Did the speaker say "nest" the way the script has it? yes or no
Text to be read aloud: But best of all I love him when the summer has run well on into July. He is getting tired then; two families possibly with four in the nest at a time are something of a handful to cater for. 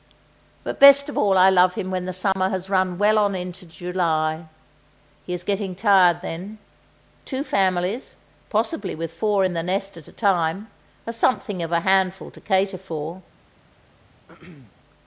yes